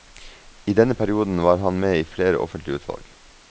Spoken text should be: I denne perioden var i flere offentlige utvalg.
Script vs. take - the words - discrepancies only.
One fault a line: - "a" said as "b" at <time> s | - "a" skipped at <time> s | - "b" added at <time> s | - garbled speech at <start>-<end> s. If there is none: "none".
- "han med" added at 1.6 s